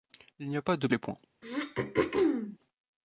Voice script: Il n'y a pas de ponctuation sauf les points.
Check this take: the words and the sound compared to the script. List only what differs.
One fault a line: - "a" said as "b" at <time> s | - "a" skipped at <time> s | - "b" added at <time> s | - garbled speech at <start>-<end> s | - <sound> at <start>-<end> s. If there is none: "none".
- "ponctuation sauf" skipped at 0.9 s
- throat clearing at 1.4-2.6 s